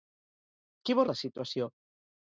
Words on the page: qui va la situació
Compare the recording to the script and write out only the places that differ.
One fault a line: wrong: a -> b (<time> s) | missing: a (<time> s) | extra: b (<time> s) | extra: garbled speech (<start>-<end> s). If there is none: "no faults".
no faults